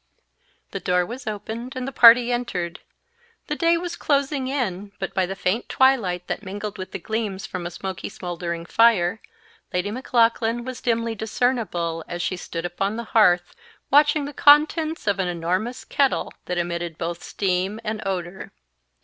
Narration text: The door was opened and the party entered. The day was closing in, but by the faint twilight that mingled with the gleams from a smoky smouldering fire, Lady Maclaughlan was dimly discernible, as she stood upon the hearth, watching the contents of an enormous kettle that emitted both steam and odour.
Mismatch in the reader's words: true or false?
false